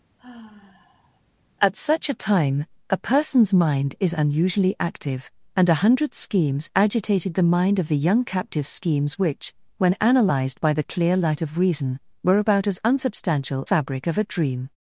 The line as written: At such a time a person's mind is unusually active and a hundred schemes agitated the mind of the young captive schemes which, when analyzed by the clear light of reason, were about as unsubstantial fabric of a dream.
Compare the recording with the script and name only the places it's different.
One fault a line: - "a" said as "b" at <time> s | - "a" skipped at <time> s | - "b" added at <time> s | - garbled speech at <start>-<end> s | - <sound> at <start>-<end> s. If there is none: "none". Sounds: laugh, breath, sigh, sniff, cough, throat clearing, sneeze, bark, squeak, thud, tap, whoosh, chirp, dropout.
- sigh at 0.2-1.2 s